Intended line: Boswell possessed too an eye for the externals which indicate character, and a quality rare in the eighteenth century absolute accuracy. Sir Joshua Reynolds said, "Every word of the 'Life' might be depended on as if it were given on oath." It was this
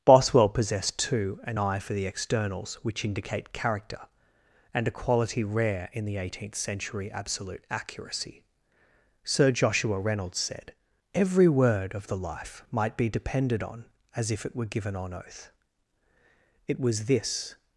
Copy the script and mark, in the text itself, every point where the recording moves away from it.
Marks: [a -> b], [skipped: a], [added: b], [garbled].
Boswell possessed too an eye for the externals which indicate character, and a quality rare in the eighteenth century absolute accuracy. Sir Joshua Reynolds said, "Every word of the 'Life' might be depended on as if it were given on oath." It was this